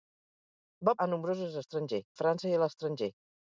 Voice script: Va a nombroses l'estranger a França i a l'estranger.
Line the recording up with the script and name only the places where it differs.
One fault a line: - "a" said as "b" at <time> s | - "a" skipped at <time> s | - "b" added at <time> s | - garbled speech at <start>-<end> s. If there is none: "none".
none